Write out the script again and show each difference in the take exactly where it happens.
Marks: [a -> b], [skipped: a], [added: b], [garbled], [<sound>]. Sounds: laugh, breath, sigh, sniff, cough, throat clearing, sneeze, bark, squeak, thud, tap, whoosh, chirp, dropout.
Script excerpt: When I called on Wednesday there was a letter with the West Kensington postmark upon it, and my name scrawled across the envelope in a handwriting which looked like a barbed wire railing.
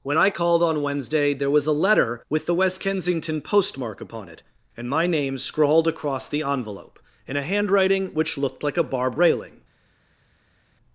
When I called on Wednesday there was a letter with the West Kensington postmark upon it, and my name scrawled across the envelope in a handwriting which looked like a barbed [skipped: wire] railing.